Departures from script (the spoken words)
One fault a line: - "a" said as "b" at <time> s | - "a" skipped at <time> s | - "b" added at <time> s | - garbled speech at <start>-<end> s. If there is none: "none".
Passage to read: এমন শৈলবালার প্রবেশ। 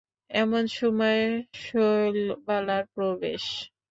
- "সময়" added at 0.8 s